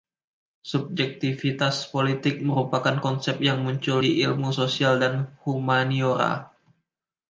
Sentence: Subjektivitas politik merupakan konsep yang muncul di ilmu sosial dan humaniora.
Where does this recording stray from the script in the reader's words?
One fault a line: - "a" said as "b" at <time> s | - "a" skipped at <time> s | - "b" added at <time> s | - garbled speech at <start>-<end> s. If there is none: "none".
none